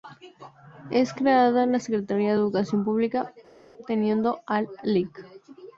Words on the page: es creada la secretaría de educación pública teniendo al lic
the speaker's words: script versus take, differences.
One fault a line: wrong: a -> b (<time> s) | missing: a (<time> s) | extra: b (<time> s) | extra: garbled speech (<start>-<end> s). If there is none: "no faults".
no faults